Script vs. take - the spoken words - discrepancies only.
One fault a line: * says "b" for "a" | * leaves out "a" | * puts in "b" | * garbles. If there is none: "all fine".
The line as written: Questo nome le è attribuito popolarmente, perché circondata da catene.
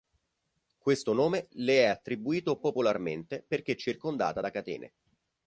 all fine